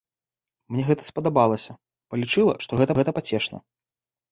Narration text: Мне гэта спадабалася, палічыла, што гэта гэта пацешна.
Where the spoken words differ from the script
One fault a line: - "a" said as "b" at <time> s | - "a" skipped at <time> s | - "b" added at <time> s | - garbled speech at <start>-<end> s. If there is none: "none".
none